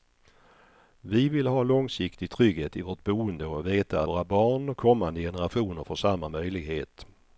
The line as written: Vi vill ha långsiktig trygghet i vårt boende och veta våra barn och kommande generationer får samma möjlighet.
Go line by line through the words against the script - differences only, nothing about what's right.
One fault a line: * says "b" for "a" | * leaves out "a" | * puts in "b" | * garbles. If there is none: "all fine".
all fine